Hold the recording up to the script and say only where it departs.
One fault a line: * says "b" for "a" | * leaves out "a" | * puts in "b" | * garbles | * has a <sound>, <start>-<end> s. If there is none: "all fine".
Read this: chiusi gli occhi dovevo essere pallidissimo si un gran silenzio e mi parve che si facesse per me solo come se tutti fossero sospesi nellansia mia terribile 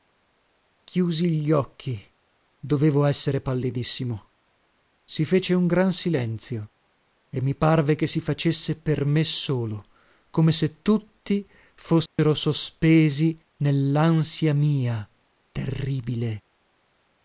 * puts in "fece"
* has a dropout, 12.1-12.2 s